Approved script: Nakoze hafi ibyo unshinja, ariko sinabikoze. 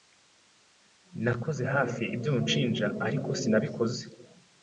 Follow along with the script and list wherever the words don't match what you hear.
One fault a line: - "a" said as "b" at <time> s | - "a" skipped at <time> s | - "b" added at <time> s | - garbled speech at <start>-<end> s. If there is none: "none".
none